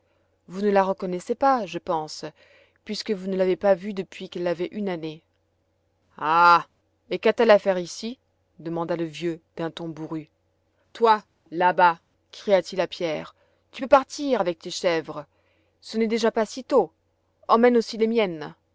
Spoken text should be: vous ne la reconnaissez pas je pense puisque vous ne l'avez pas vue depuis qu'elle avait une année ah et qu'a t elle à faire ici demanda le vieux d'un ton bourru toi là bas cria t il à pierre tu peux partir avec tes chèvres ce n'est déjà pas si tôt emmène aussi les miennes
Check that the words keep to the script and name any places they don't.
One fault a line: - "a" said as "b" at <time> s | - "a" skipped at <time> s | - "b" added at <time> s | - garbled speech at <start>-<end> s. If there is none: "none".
none